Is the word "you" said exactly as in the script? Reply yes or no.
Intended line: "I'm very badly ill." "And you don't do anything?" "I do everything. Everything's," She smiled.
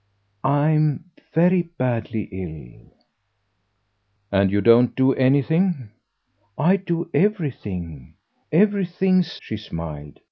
yes